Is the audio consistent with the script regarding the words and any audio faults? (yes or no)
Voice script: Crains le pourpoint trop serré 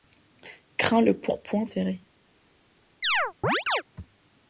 no